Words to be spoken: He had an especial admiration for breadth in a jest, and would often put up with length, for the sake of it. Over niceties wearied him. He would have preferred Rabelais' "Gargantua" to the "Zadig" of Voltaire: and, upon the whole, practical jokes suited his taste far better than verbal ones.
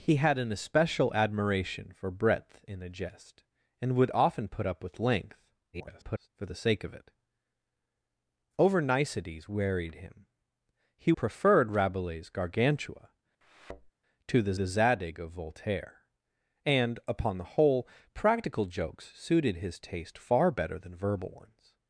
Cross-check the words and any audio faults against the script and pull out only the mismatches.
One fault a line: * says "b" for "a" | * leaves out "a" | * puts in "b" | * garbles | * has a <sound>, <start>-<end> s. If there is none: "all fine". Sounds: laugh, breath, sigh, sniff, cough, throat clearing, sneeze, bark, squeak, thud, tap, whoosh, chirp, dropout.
* garbles
* leaves out "would have"
* has a thud, 13.4-13.9 s
* puts in "the"